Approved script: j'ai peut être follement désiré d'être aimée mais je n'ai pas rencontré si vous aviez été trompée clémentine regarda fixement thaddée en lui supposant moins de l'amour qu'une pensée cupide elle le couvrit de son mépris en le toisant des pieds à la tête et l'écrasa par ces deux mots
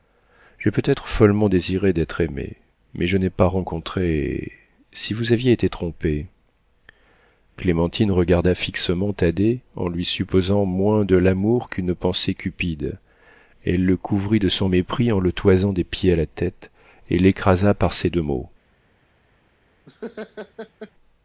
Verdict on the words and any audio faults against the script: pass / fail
fail